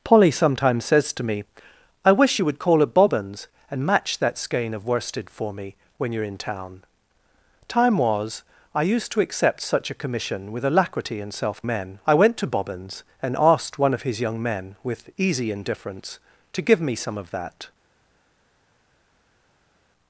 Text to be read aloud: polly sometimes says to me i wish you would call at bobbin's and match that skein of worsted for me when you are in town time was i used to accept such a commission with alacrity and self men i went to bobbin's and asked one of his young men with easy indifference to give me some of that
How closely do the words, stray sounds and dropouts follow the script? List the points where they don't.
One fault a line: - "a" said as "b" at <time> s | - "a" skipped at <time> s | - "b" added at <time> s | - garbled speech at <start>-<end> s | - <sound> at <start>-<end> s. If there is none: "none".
none